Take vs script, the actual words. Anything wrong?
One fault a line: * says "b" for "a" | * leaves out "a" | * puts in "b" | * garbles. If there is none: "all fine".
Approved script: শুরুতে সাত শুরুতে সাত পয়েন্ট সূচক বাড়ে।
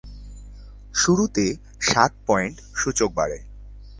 * leaves out "শুরুতে সাত"